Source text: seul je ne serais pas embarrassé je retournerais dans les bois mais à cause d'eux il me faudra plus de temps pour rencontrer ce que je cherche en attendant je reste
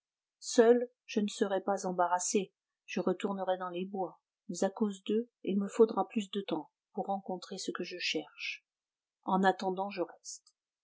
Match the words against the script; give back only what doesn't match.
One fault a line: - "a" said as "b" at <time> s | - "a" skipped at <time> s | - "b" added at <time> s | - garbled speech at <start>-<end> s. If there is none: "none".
none